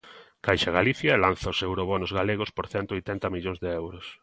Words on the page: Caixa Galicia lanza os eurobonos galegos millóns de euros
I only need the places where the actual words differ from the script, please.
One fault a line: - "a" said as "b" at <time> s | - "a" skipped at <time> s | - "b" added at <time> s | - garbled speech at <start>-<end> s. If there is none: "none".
- "por cento oitenta" added at 2.6 s